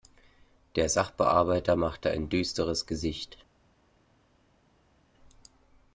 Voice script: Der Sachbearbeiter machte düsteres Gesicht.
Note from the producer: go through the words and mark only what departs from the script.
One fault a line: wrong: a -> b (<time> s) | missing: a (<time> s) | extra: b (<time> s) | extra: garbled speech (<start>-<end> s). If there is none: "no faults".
extra: ein (2.1 s)